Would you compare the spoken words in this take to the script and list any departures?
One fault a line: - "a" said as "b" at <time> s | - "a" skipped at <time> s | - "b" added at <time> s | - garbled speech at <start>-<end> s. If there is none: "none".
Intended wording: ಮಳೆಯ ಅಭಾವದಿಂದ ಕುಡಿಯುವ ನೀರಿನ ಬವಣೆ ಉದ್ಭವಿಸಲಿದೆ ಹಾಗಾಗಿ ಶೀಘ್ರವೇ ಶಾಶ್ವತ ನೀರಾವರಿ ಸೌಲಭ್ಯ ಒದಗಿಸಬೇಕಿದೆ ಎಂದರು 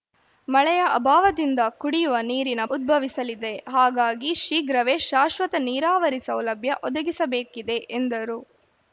- "ಬವಣೆ" skipped at 2.6 s